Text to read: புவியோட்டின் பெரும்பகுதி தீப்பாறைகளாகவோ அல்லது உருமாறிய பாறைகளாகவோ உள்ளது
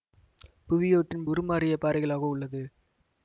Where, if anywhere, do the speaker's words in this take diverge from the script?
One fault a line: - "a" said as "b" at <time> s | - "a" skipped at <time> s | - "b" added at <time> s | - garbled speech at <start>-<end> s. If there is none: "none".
- "பெரும்பகுதி தீப்பாறைகளாகவோ அல்லது" skipped at 1.3 s